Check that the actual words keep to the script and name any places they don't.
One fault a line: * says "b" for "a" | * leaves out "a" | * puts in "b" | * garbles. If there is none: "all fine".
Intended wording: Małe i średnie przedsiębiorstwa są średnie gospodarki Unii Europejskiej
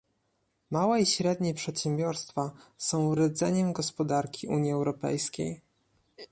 * says "rdzeniem" for "średnie"